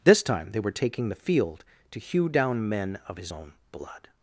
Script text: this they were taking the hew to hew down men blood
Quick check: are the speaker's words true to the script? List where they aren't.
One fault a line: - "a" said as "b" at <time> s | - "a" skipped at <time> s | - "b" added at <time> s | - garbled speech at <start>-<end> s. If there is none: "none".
- "time" added at 0.2 s
- "hew" said as "field" at 1.1 s
- "of his own" added at 3.1 s